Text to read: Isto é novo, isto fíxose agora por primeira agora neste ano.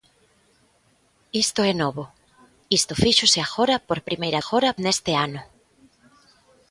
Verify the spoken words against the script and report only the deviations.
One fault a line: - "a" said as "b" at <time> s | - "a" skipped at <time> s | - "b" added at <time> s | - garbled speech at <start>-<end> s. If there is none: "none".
none